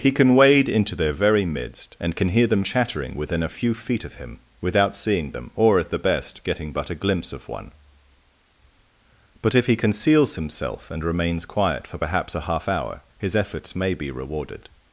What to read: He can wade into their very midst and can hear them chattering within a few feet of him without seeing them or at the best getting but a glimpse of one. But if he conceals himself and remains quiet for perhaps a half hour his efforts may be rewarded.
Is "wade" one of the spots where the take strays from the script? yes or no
no